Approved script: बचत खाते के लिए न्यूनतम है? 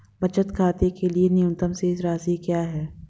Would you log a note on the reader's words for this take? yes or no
yes